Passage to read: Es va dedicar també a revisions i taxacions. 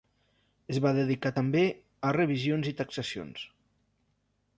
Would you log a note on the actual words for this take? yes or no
no